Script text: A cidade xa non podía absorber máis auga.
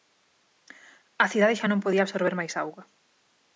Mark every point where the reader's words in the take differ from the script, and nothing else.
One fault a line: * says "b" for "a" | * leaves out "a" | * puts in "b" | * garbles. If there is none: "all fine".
all fine